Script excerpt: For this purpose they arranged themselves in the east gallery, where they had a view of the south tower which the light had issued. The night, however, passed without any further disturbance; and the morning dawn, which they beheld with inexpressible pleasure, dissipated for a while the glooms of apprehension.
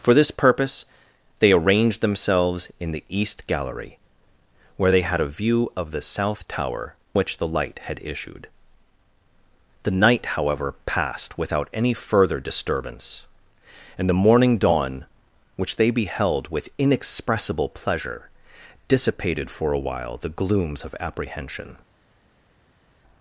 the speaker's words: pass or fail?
pass